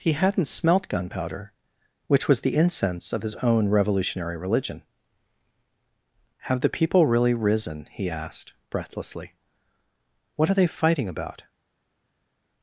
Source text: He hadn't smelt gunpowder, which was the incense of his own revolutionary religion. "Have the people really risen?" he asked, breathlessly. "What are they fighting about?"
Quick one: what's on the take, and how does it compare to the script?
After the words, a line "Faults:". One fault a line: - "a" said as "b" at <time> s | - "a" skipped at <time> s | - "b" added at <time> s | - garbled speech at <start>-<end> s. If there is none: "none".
He hadn't smelt gunpowder, which was the incense of his own revolutionary religion. "Have the people really risen?" he asked, breathlessly. "What are they fighting about?"
Faults:
none